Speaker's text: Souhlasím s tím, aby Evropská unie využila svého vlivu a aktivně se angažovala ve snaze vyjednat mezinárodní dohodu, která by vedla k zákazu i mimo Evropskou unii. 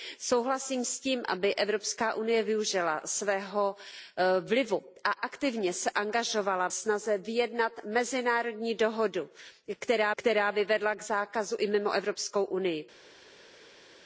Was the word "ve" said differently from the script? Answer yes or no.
yes